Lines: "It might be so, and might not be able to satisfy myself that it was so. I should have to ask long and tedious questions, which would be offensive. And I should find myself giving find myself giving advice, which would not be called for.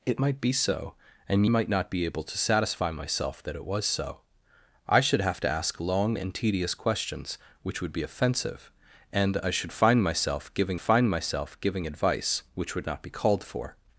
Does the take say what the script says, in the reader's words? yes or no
yes